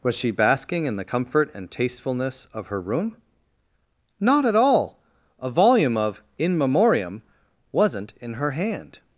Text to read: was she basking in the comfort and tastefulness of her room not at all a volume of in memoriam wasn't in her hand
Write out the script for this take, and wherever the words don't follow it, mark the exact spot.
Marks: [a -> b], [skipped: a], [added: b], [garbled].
was she basking in the comfort and tastefulness of her room not at all a volume of in memoriam wasn't in her hand